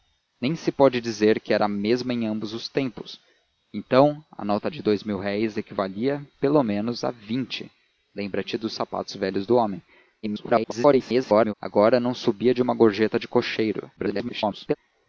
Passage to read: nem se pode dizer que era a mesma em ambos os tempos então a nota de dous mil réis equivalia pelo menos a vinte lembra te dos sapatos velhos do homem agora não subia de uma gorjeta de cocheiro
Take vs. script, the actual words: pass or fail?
fail